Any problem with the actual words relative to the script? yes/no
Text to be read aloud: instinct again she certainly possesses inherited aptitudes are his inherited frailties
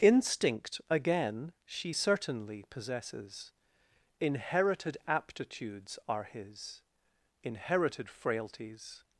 no